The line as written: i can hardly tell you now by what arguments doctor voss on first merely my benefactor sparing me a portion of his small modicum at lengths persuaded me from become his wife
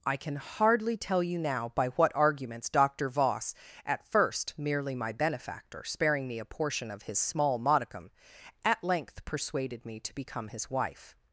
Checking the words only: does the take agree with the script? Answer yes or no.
no